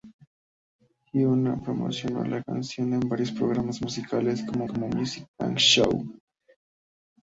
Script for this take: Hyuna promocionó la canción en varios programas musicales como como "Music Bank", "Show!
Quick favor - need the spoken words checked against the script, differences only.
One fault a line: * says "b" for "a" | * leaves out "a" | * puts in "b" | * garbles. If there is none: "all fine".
all fine